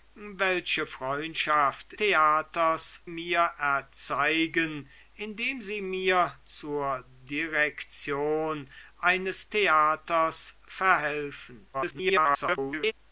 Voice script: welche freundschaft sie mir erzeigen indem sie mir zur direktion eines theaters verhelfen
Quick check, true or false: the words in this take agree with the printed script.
false